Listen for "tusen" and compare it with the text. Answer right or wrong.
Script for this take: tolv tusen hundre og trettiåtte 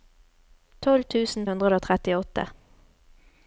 right